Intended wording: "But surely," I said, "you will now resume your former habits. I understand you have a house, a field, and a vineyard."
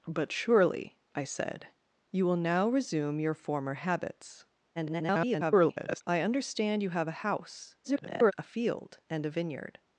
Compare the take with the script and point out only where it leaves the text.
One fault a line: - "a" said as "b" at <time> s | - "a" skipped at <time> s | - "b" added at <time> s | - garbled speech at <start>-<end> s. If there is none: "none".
- garbled speech at 4.7-6.0 s
- garbled speech at 7.8-8.3 s